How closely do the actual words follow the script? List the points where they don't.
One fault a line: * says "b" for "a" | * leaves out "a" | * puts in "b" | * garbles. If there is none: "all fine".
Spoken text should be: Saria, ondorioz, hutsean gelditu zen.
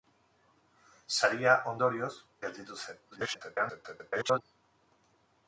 * leaves out "hutsean"
* garbles